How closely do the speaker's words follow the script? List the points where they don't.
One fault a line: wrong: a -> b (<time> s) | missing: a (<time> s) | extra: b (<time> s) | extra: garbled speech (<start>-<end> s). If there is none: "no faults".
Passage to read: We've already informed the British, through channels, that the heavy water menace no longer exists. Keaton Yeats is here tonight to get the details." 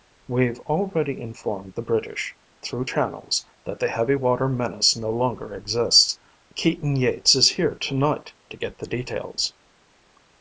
no faults